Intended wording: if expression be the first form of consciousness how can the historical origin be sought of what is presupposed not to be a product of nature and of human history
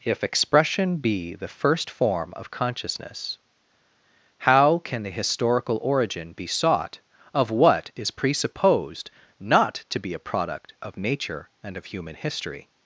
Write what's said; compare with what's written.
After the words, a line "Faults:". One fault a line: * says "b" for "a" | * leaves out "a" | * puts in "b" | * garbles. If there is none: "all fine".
if expression be the first form of consciousness how can the historical origin be sought of what is presupposed not to be a product of nature and of human history
Faults:
all fine